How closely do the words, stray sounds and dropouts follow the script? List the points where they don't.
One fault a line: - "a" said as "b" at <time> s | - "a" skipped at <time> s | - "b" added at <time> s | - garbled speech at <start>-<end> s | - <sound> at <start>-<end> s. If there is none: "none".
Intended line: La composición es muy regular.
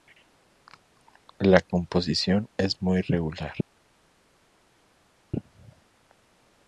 none